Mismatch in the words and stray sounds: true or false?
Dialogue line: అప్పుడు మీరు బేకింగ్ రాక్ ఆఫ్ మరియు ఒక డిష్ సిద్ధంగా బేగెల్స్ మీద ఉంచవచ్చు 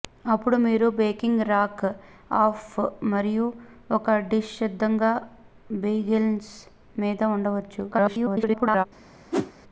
true